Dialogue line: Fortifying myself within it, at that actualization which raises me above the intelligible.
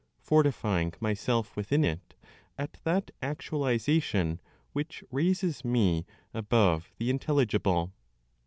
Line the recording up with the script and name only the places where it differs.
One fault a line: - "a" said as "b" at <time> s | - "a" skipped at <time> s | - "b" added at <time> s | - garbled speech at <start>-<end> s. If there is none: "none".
none